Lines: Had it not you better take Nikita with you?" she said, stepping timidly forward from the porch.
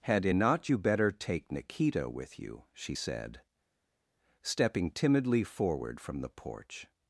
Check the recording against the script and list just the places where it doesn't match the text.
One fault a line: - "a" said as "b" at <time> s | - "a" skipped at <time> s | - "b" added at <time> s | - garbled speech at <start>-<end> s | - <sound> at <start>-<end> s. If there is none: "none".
none